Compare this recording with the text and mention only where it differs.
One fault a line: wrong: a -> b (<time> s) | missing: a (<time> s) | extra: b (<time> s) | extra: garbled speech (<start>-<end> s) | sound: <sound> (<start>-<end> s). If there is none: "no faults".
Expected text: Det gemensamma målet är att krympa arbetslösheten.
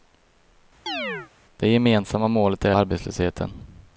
sound: chirp (0.9-1.3 s)
missing: att krympa (2.7 s)